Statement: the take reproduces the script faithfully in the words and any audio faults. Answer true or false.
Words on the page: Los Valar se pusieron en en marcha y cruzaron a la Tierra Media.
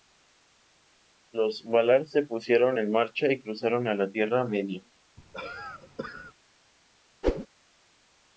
false